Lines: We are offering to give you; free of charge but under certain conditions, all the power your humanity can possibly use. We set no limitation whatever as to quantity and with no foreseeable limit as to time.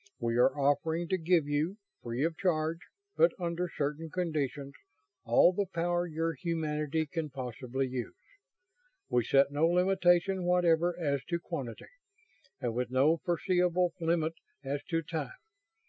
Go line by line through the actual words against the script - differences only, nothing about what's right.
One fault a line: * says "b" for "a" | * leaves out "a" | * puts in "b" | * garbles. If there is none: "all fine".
all fine